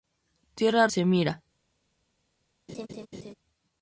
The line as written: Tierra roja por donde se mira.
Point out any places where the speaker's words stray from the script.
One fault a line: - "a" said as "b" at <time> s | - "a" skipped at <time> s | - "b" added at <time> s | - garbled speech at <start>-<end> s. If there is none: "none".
- "roja por donde" skipped at 0.9 s